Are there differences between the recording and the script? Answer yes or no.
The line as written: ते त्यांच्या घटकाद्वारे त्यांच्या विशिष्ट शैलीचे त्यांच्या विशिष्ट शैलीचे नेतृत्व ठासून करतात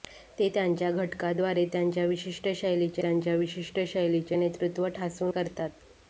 no